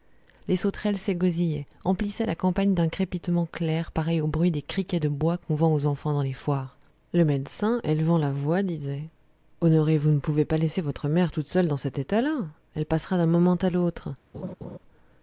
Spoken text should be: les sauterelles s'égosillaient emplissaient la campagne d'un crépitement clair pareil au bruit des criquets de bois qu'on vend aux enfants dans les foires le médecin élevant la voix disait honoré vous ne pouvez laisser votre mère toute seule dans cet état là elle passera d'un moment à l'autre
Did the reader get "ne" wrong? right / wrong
right